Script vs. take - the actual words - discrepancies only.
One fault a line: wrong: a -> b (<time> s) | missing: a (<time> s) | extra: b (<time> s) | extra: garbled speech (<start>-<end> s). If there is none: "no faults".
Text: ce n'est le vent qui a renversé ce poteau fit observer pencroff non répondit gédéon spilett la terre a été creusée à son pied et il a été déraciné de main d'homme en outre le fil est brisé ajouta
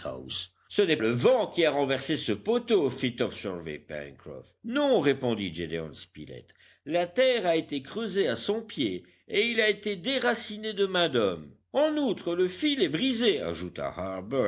no faults